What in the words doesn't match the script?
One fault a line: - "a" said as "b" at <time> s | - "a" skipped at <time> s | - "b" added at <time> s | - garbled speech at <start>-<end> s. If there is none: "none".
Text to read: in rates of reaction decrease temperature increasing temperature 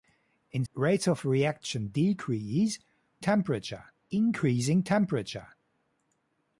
none